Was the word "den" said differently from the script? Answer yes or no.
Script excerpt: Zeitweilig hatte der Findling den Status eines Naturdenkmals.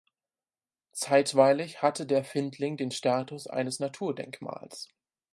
no